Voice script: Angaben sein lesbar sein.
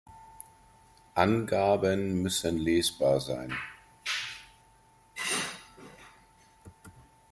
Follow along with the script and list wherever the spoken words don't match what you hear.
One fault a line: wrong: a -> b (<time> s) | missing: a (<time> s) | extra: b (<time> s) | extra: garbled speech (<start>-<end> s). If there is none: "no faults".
wrong: sein -> müssen (2.2 s)